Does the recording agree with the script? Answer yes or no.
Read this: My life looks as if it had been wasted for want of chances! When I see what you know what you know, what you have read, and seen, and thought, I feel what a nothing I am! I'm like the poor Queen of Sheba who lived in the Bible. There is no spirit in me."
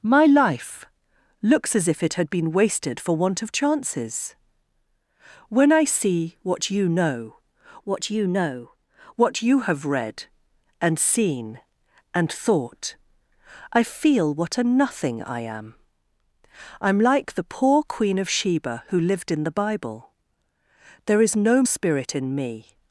yes